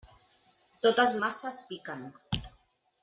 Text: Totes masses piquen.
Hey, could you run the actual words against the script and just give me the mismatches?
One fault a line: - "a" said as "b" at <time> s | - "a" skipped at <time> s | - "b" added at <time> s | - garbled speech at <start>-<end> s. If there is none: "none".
none